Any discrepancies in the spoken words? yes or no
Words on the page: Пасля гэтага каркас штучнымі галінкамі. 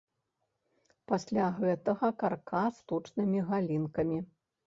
no